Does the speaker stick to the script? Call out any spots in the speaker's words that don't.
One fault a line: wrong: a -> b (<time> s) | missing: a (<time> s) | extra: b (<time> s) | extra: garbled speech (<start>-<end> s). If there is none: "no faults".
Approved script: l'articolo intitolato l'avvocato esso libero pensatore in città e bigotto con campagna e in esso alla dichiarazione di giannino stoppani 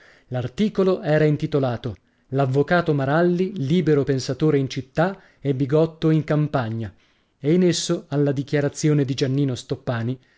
extra: era (1.0 s)
wrong: esso -> maralli (2.9 s)
wrong: con -> in (6.1 s)